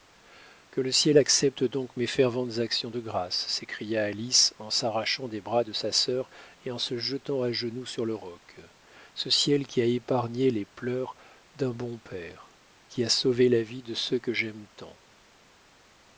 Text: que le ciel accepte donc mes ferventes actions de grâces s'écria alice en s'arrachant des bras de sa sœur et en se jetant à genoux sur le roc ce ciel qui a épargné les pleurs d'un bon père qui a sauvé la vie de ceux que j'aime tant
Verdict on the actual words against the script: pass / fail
pass